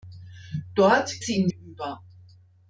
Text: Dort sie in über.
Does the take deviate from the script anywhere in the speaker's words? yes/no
no